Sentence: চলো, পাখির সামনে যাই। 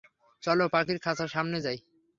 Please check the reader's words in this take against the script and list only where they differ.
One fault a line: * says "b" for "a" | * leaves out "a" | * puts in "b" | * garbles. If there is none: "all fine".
* puts in "খাঁচার"